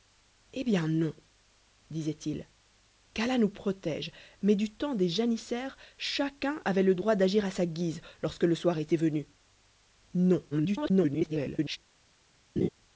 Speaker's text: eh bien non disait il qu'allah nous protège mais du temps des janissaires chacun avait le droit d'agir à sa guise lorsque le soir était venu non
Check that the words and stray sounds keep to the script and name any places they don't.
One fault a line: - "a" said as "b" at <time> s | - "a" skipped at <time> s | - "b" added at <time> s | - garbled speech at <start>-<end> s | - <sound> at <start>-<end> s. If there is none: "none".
- garbled speech at 10.5-11.8 s
- laugh at 12.6-12.7 s